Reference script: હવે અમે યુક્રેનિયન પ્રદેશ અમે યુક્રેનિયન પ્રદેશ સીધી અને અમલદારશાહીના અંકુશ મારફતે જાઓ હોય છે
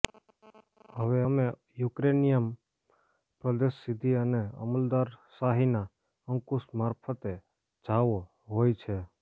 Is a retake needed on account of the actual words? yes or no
yes